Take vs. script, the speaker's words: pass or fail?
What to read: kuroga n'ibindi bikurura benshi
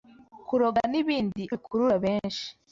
pass